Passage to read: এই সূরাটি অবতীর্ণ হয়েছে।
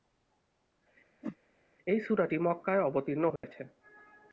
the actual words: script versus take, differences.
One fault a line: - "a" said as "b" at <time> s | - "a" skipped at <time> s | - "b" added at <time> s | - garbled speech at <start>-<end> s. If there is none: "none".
- "মক্কায়" added at 2.4 s